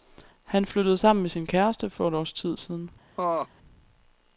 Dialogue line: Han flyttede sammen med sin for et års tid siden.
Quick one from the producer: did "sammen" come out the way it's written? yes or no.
yes